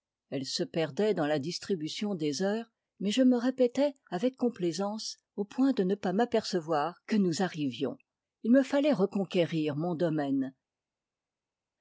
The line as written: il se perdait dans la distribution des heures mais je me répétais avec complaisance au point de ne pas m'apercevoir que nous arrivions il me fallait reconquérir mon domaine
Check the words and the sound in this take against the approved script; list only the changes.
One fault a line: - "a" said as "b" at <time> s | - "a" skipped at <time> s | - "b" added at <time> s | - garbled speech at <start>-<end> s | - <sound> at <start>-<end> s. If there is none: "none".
- "il" said as "elle" at 0.3 s